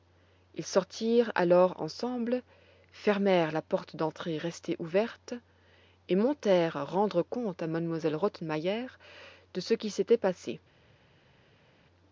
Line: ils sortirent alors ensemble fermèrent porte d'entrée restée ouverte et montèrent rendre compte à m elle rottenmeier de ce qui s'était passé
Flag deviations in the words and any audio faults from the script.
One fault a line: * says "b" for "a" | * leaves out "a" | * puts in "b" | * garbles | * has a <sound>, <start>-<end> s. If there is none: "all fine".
* puts in "la"